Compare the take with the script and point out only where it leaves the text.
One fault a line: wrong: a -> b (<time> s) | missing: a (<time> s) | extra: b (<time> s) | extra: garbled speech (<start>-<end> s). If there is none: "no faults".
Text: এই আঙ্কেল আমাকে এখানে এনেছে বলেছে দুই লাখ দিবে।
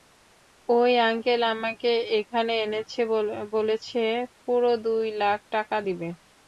wrong: এই -> ওই (0.7 s)
extra: পুরো (4.4 s)
extra: টাকা (5.5 s)